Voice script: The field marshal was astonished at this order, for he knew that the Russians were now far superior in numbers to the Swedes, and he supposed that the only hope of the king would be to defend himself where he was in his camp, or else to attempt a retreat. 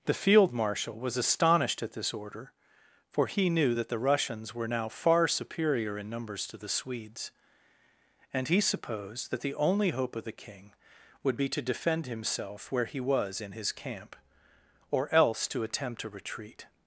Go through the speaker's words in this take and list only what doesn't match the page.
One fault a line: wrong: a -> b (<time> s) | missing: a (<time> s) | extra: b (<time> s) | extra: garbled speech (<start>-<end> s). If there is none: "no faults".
no faults